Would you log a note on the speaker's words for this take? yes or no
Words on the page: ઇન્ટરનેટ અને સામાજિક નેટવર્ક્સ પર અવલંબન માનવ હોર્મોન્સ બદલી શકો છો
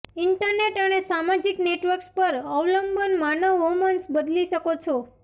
no